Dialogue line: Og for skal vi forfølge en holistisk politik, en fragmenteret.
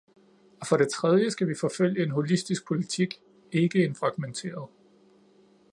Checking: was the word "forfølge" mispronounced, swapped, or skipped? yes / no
no